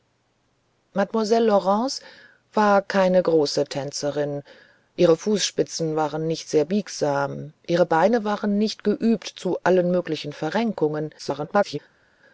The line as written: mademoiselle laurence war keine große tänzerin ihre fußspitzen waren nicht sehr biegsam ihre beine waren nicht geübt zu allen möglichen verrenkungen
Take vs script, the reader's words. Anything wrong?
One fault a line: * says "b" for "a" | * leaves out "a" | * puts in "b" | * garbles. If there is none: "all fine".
* garbles